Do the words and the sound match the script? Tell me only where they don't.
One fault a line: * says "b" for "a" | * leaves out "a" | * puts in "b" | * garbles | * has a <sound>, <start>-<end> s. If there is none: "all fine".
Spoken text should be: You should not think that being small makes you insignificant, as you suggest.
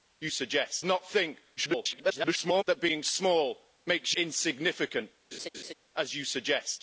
* says "suggest" for "should"
* garbles
* leaves out "you"
* has a laugh, 5.3-5.7 s